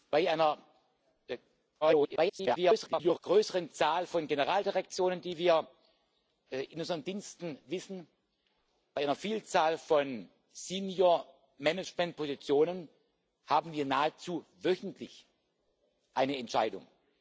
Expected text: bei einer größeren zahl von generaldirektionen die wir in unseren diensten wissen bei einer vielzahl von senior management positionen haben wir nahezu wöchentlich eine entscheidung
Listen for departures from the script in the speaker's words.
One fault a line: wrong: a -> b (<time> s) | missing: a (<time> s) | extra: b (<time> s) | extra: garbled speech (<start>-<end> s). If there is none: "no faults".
extra: garbled speech (1.8-3.2 s)